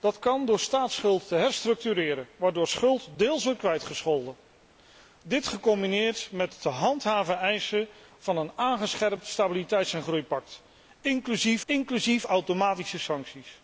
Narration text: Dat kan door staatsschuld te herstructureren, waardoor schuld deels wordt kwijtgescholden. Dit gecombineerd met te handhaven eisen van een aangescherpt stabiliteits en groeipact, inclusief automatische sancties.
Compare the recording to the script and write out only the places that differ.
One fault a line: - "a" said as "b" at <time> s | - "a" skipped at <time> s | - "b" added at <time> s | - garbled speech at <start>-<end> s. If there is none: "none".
- "inclusief" added at 11.7 s